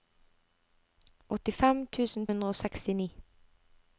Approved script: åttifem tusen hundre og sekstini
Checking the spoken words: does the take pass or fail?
pass